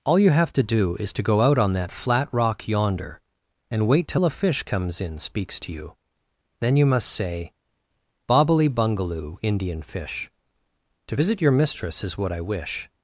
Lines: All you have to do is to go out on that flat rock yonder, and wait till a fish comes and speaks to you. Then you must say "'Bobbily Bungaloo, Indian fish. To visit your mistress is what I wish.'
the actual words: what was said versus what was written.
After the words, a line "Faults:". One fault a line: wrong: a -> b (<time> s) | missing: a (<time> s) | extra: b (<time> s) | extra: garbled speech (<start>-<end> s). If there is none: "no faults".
All you have to do is to go out on that flat rock yonder, and wait till a fish comes in speaks to you. Then you must say "'Bobbily Bungaloo, Indian fish. To visit your mistress is what I wish.'
Faults:
wrong: and -> in (5.0 s)